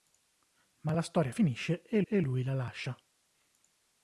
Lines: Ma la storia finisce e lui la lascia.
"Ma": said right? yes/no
yes